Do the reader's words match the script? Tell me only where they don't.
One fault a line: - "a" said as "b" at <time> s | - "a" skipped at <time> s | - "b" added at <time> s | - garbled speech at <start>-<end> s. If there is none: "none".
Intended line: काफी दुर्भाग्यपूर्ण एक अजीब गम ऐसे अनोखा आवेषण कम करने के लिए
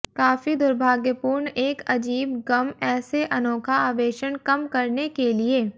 none